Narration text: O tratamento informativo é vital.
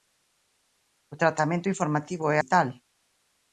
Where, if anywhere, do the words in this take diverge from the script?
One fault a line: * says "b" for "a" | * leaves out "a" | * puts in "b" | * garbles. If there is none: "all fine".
all fine